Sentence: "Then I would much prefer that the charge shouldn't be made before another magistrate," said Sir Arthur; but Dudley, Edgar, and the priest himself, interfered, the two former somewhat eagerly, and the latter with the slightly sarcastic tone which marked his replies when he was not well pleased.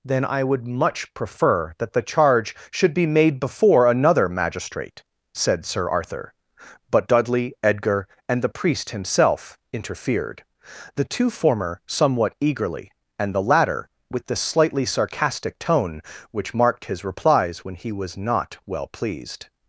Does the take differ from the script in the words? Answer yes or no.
yes